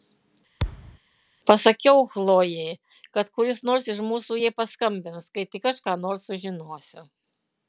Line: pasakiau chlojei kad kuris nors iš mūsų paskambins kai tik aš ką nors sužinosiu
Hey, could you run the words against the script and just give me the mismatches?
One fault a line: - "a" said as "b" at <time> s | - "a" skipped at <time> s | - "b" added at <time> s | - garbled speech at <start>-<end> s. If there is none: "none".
- "jai" added at 4.4 s